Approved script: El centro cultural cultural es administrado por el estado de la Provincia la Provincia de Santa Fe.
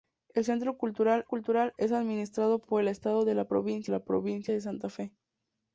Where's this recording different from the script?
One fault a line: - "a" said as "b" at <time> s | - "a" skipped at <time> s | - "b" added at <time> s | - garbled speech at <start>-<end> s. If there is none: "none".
none